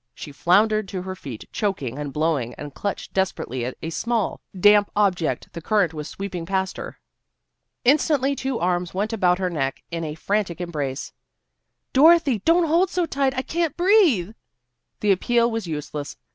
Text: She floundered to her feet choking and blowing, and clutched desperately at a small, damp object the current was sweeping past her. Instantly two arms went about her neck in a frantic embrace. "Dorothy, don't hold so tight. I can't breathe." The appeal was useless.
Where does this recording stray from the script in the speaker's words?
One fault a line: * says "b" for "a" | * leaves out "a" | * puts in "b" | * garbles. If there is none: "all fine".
all fine